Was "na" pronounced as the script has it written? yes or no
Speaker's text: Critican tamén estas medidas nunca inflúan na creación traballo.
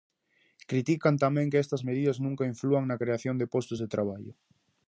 yes